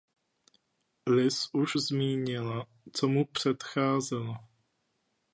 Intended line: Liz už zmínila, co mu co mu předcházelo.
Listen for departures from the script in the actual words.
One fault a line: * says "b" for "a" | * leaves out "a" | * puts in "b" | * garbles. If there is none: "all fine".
* leaves out "co mu"